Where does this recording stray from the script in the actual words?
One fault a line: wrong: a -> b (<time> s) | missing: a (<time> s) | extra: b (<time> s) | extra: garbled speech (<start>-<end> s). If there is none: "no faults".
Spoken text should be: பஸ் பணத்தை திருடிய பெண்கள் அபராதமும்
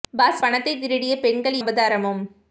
no faults